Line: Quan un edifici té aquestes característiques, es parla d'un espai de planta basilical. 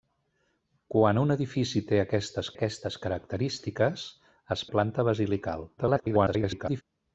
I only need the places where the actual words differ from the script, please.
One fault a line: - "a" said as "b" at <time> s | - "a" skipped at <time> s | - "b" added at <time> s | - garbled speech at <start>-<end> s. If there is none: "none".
- "aquestes" added at 2.5 s
- "parla d'un espai" skipped at 4.7 s
- garbled speech at 5.8-6.8 s